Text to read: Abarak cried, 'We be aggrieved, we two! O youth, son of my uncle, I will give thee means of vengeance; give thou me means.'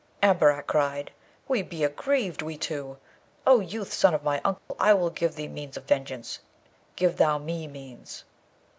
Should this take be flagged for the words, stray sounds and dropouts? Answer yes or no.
yes